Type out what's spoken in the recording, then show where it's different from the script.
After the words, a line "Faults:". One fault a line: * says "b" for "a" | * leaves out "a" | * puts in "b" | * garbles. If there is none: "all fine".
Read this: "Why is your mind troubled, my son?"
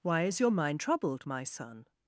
"Why is your mind troubled, my son?"
Faults:
all fine